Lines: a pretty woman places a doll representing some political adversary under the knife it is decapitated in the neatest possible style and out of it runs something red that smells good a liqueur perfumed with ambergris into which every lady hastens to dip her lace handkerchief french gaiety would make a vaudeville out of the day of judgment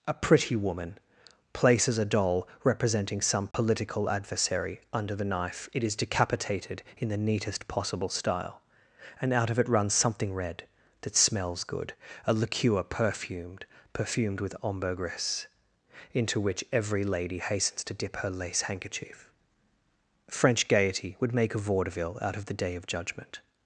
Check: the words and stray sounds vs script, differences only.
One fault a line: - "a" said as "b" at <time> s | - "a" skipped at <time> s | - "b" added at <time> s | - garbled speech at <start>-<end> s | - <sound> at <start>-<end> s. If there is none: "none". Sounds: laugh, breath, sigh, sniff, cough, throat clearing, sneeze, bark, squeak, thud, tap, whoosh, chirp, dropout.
- dropout at 3.5-3.5 s
- "perfumed" added at 13.9 s